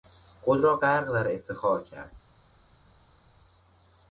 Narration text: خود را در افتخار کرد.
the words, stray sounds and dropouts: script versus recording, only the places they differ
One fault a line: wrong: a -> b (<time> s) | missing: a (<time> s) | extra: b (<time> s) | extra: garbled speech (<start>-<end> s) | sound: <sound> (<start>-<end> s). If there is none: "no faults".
extra: غرق (0.8 s)